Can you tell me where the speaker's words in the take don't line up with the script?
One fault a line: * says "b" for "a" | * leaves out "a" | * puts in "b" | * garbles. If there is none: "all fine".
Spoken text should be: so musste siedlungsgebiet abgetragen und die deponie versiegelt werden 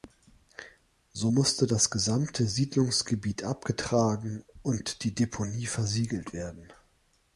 * puts in "das gesamte"